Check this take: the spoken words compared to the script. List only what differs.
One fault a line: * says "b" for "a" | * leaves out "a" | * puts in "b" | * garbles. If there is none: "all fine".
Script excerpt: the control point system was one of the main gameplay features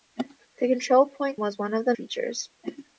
* leaves out "system"
* leaves out "main gameplay"